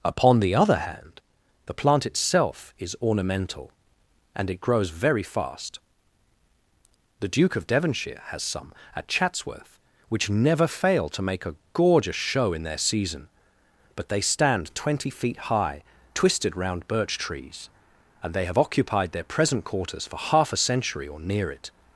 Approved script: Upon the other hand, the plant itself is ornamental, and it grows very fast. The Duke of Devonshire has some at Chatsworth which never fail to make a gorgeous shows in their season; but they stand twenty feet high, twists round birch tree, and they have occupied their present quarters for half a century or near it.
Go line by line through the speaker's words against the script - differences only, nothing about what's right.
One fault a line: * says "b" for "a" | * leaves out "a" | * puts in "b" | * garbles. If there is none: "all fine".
* says "show" for "shows"
* says "twisted" for "twists"
* says "trees" for "tree"